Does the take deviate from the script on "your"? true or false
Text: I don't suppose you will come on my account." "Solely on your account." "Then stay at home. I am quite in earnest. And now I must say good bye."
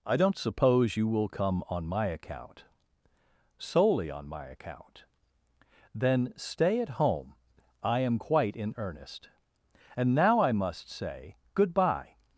true